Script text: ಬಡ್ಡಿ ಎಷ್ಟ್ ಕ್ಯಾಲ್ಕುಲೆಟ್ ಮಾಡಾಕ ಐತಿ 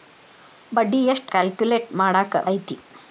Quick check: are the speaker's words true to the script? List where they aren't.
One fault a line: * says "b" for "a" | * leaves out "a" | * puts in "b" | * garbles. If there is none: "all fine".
all fine